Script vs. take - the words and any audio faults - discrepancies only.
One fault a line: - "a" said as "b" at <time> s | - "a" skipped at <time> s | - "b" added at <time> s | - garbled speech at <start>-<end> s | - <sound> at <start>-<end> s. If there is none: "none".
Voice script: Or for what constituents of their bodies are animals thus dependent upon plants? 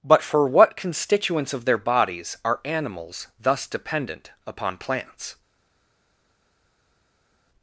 - "Or" said as "But" at 0.0 s